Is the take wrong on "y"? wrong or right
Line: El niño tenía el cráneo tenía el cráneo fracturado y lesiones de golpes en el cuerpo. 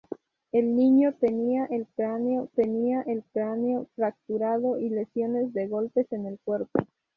right